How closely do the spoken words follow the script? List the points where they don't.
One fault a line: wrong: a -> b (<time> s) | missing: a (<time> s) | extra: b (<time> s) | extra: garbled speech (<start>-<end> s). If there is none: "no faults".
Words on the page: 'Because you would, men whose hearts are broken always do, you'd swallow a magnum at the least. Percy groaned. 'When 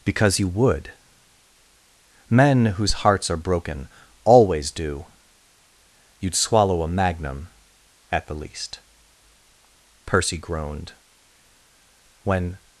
no faults